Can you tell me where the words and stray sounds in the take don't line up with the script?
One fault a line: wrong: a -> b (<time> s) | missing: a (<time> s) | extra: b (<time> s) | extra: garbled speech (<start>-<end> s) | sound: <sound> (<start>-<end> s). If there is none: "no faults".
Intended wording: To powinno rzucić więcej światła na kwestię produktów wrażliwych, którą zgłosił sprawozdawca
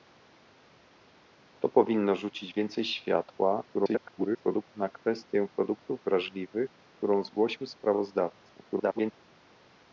extra: garbled speech (3.7-4.7 s)
extra: garbled speech (8.7-9.1 s)